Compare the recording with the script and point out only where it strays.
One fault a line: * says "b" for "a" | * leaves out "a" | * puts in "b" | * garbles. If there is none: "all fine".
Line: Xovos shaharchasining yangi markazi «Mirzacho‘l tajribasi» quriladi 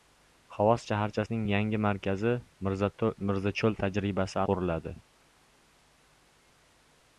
all fine